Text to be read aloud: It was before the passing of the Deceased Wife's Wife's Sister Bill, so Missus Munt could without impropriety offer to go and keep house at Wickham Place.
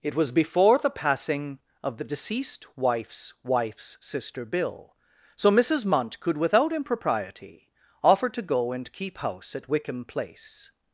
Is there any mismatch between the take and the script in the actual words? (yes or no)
no